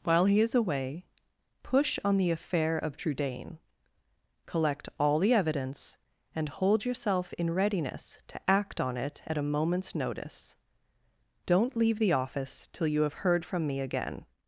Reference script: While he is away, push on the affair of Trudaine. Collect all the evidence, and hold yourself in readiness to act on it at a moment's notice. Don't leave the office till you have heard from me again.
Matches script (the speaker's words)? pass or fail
pass